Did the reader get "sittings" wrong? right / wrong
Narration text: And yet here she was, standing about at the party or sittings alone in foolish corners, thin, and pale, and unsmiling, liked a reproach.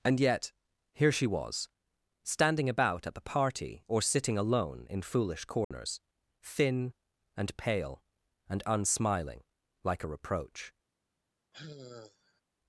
wrong